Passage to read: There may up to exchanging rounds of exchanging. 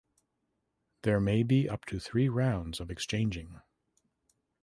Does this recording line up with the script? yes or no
no